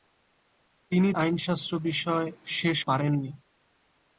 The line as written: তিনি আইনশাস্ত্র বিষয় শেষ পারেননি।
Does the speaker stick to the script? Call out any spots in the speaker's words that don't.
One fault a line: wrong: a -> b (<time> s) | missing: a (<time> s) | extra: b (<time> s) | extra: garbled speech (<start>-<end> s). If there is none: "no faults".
no faults